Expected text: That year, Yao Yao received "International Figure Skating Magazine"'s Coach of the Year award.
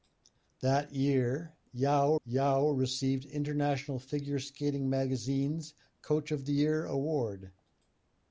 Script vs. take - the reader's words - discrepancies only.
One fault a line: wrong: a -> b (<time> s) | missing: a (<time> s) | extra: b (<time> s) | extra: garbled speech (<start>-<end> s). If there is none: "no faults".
no faults